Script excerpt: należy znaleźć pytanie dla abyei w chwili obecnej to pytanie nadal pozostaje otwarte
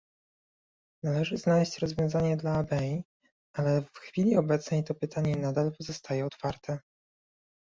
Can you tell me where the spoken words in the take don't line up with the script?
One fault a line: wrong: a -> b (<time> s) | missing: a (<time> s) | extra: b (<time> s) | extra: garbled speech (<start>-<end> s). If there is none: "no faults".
wrong: pytanie -> rozwiązanie (1.8 s)
extra: ale (3.5 s)